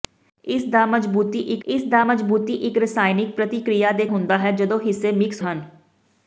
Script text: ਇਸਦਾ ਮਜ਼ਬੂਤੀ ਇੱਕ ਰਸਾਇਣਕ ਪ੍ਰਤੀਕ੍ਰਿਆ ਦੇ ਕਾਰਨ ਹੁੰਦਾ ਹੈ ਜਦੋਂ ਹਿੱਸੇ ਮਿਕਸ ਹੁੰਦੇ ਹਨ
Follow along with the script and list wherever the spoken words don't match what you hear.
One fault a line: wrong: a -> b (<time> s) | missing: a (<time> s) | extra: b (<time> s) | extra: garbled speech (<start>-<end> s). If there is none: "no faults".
extra: ਇਸਦਾ ਮਜ਼ਬੂਤੀ ਇੱਕ (1.7 s)
missing: ਕਾਰਨ (4.1 s)
missing: ਹੁੰਦੇ (5.4 s)